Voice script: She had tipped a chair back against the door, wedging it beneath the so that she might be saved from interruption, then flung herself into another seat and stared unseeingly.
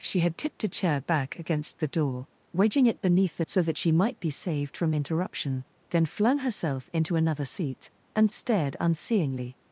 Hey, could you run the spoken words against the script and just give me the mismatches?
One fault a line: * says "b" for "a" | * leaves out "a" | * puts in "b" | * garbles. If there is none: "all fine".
all fine